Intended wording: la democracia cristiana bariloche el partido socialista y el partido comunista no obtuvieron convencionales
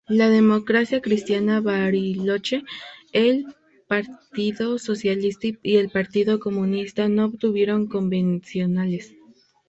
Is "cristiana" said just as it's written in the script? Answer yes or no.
yes